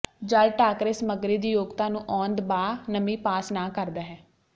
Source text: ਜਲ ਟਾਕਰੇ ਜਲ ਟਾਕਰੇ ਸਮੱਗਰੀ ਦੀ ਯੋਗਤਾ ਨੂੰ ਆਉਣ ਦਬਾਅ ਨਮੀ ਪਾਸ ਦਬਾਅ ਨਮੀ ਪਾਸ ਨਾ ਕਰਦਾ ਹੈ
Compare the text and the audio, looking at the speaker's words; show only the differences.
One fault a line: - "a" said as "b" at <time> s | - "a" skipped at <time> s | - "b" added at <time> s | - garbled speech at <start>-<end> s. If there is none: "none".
- "ਜਲ ਟਾਕਰੇ" skipped at 0.9 s
- "ਦਬਾਅ ਨਮੀ ਪਾਸ" skipped at 3.5 s